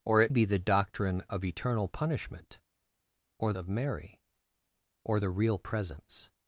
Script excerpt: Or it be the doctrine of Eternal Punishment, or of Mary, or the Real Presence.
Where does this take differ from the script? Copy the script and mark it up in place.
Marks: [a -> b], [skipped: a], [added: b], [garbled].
Or it be the doctrine of Eternal Punishment, or of Mary, or the Real Presence.